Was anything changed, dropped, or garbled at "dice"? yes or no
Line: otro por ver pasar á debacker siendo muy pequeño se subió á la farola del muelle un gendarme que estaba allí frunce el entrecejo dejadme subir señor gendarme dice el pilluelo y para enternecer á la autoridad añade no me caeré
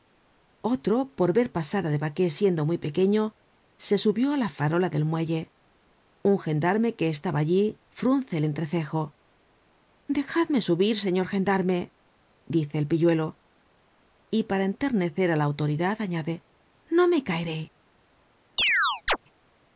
no